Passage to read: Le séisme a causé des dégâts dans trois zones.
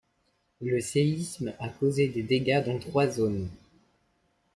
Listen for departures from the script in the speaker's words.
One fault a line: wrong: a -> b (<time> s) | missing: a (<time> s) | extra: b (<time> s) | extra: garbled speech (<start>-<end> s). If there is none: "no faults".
no faults